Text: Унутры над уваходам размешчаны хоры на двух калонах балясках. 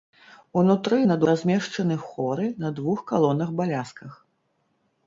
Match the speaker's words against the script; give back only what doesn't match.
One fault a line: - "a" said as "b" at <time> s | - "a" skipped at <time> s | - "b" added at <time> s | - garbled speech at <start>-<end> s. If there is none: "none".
- "уваходам" skipped at 1.2 s